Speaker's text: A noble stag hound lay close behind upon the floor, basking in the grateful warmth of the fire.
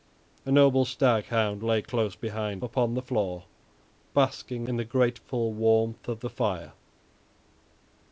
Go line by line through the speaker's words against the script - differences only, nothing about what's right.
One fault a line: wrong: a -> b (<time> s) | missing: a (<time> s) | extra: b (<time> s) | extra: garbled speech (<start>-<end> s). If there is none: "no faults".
no faults